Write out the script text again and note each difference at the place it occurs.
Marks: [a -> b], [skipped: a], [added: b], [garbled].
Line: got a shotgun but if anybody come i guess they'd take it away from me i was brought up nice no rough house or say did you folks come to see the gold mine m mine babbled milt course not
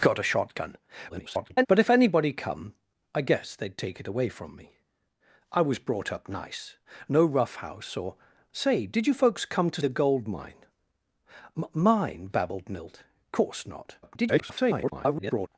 got a shotgun [garbled] but if anybody come i guess they'd take it away from me i was brought up nice no rough house or say did you folks come to [skipped: see] the gold mine m mine babbled milt course not [garbled]